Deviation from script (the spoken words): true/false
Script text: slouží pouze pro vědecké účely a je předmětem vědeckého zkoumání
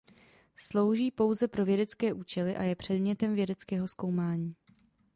false